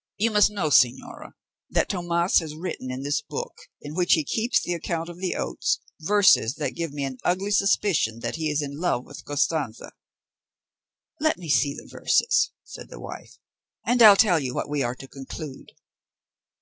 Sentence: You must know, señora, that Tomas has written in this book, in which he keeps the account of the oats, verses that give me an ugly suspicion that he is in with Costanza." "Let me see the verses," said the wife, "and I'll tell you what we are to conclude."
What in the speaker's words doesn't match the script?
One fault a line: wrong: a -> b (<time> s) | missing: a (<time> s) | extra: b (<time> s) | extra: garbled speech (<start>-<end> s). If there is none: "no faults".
extra: love (8.8 s)